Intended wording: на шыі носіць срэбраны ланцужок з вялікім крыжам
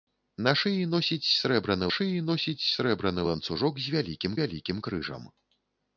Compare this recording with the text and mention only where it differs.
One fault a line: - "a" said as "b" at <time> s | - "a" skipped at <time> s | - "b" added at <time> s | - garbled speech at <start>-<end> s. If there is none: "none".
- "шыі носіць срэбраны" added at 2.0 s
- "вялікім" added at 4.4 s